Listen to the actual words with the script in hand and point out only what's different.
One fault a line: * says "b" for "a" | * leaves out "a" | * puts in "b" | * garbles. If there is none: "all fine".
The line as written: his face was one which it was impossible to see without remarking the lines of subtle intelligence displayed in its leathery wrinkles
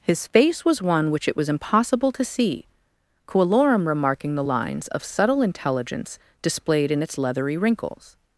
* says "coelorum" for "without"